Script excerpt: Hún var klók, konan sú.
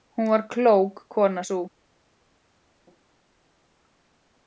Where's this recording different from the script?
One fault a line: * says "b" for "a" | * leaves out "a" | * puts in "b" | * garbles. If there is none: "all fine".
all fine